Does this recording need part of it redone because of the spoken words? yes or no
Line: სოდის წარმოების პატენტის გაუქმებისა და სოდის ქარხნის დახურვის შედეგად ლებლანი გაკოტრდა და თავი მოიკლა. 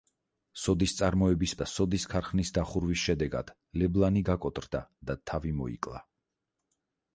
yes